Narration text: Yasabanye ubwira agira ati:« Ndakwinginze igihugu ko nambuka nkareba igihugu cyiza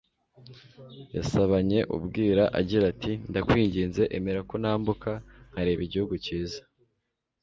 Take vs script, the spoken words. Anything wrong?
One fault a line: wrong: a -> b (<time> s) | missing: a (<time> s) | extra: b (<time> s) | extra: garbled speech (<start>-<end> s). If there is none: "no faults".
wrong: igihugu -> emera (4.2 s)